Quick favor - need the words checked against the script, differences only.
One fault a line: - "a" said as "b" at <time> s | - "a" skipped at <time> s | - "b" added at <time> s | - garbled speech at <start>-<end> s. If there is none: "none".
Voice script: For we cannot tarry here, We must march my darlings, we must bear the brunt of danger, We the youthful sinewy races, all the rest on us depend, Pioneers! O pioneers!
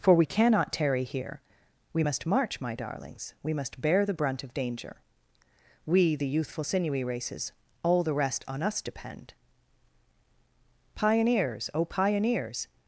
none